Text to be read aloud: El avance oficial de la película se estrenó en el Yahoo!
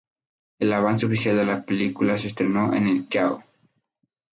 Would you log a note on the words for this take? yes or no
no